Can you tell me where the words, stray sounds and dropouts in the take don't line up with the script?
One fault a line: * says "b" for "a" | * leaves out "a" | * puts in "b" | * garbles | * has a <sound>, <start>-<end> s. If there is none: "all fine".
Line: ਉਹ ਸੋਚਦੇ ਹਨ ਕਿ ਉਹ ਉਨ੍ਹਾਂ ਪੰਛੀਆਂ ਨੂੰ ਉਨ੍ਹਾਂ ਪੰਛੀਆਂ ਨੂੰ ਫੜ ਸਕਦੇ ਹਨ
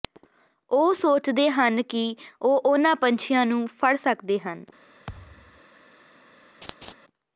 * leaves out "ਉਨ੍ਹਾਂ ਪੰਛੀਆਂ ਨੂੰ"
* has a thud, 5.1-5.6 s
* has a laugh, 6.6-6.9 s